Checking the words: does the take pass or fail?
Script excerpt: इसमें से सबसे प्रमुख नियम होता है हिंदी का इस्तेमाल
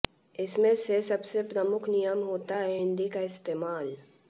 pass